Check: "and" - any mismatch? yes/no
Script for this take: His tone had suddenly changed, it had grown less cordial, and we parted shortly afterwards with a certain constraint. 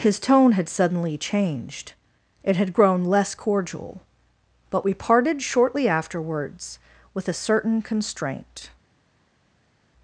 yes